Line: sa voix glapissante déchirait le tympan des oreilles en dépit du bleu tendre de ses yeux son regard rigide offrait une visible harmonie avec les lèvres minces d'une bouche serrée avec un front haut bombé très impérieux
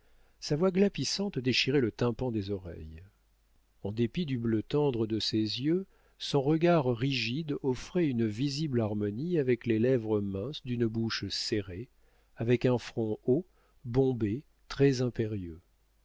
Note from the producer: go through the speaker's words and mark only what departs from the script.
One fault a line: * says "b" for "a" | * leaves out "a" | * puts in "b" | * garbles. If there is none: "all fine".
all fine